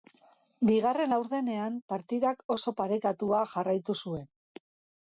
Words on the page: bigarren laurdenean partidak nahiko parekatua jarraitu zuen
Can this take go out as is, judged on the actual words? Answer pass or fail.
fail